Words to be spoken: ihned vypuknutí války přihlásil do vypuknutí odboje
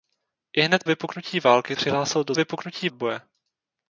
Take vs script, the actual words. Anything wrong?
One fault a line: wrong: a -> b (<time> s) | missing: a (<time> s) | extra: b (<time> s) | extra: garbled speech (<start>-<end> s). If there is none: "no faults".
no faults